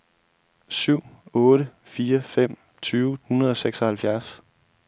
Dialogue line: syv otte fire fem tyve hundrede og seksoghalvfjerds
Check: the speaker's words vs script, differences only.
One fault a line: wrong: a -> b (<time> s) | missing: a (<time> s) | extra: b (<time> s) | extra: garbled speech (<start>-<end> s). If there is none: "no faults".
no faults